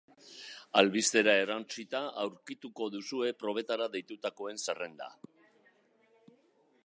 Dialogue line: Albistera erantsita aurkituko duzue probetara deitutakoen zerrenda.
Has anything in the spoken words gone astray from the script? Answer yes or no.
no